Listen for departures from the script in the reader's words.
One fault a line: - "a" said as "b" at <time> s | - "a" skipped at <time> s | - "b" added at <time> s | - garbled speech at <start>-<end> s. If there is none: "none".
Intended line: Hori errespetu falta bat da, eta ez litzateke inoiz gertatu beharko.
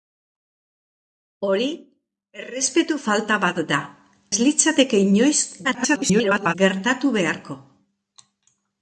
- "eta" skipped at 3.8 s
- garbled speech at 5.6-6.6 s